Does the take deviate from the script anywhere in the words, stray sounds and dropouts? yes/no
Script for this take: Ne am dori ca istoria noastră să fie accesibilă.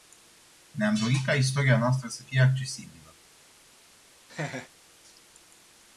yes